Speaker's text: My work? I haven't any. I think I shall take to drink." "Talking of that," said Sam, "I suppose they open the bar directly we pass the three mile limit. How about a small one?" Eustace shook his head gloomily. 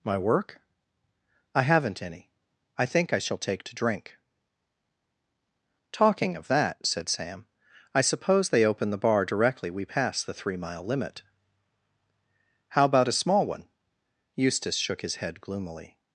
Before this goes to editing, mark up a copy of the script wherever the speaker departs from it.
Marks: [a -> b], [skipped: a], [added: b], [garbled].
My work? I haven't any. I think I shall take to drink." "Talking of that," said Sam, "I suppose they open the bar directly we pass the three mile limit. How about a small one?" Eustace shook his head gloomily.